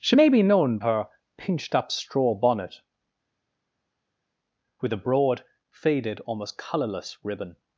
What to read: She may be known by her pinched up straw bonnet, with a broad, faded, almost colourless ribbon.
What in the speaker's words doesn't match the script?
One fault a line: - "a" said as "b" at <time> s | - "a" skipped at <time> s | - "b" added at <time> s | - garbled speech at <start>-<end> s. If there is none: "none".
- "by" skipped at 0.8 s